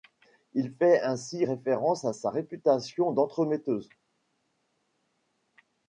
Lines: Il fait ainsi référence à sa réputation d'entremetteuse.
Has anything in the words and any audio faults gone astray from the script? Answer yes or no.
no